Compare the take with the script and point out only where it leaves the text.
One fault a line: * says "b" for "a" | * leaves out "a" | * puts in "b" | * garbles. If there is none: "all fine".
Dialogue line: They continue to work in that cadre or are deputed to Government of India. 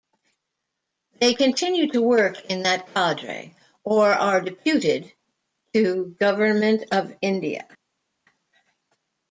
all fine